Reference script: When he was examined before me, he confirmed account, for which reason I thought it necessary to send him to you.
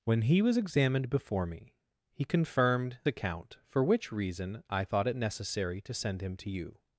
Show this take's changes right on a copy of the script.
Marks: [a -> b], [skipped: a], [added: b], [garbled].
When he was examined before me, he confirmed account, for which reason I thought it necessary to send him to you.